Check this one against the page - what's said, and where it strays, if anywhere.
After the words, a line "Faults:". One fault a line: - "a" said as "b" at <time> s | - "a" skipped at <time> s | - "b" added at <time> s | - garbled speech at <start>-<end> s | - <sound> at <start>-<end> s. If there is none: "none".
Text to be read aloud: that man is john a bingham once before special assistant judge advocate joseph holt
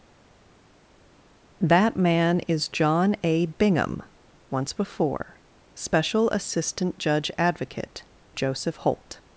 that man is john a bingham once before special assistant judge advocate joseph holt
Faults:
none